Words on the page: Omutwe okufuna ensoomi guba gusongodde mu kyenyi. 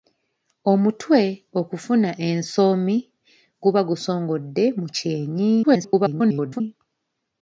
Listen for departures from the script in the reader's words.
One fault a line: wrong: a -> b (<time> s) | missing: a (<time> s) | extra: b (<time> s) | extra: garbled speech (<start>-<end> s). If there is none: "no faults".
extra: garbled speech (5.6-6.6 s)